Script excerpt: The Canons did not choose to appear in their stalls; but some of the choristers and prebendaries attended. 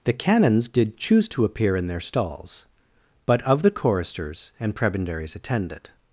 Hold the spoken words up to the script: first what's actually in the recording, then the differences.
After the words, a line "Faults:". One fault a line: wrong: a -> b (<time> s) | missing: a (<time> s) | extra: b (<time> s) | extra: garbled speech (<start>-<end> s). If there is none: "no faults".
The Canons did choose to appear in their stalls; but of the choristers and prebendaries attended.
Faults:
missing: not (1.0 s)
missing: some (3.4 s)